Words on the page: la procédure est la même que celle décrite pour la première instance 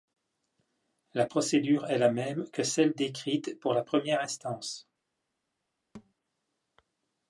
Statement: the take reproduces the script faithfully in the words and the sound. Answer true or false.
false